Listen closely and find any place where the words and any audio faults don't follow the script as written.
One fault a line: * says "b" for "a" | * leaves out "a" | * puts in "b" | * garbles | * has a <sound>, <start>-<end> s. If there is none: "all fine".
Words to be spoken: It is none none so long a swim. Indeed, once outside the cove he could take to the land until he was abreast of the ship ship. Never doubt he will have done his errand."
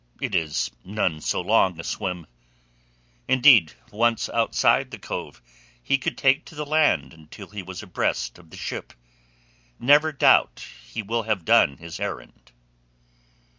* leaves out "none"
* leaves out "ship"